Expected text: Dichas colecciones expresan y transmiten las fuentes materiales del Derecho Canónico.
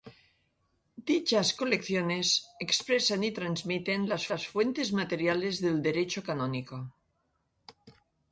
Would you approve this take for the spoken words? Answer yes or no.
no